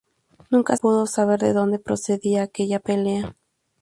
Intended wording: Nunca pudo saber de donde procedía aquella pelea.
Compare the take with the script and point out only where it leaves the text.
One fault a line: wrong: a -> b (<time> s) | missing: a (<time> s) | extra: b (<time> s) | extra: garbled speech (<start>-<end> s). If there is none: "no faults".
no faults